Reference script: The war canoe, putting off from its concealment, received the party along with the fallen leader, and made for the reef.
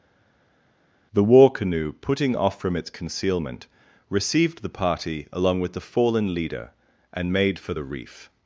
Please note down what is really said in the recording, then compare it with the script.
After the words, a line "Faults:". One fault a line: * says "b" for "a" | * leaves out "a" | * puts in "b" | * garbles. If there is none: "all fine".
The war canoe, putting off from its concealment, received the party along with the fallen leader, and made for the reef.
Faults:
all fine